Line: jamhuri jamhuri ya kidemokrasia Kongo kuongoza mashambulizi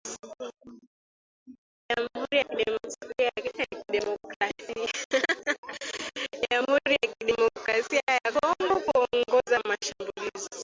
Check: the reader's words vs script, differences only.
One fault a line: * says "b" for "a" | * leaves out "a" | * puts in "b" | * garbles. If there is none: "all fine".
* leaves out "jamhuri"
* puts in "ya"